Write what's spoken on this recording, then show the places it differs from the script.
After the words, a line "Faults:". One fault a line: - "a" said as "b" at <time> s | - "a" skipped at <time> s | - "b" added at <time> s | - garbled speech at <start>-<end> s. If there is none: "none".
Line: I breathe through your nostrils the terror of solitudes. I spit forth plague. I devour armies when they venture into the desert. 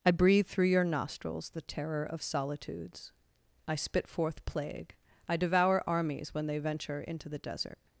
I breathe through your nostrils the terror of solitudes. I spit forth plague. I devour armies when they venture into the desert.
Faults:
none